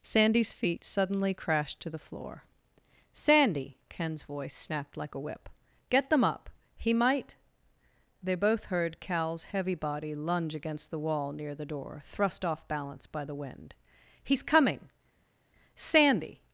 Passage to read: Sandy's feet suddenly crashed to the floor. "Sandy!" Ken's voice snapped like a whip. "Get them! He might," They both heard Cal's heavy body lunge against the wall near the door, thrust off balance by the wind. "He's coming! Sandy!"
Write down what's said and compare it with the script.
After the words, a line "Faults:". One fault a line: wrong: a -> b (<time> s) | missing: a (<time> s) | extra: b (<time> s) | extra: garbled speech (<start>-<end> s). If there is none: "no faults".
Sandy's feet suddenly crashed to the floor. "Sandy!" Ken's voice snapped like a whip. "Get them up! He might," They both heard Cal's heavy body lunge against the wall near the door, thrust off balance by the wind. "He's coming! Sandy!"
Faults:
extra: up (6.2 s)